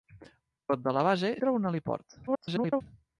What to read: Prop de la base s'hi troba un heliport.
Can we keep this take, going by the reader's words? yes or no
no